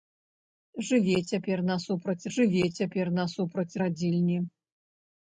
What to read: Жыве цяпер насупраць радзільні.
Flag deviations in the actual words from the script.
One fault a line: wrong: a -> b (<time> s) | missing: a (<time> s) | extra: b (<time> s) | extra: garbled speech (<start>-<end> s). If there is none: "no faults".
extra: жыве цяпер насупраць (2.3 s)